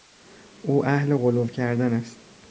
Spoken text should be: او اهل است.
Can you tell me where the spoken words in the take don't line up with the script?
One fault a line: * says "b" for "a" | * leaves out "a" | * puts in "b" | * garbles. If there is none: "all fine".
* puts in "غلو کردن"